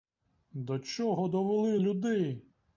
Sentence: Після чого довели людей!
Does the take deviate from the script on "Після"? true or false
true